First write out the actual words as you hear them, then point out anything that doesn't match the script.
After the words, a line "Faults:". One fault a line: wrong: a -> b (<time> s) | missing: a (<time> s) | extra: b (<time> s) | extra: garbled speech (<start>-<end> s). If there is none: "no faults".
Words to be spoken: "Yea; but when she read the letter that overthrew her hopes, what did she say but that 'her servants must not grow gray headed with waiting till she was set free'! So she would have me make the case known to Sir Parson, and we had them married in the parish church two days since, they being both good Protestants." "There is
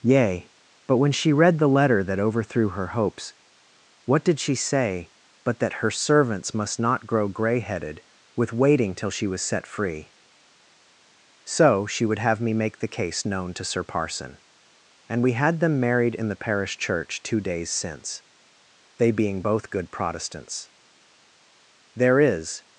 "Yea; but when she read the letter that overthrew her hopes, what did she say but that 'her servants must not grow gray headed with waiting till she was set free'! So she would have me make the case known to Sir Parson, and we had them married in the parish church two days since, they being both good Protestants." "There is
Faults:
no faults